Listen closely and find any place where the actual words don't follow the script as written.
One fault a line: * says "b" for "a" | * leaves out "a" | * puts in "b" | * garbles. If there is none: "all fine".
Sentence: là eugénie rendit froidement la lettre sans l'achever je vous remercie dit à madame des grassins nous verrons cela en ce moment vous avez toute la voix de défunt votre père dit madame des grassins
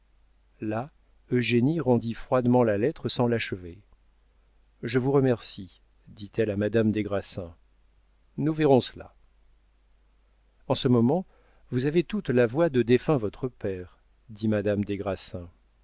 * puts in "elle"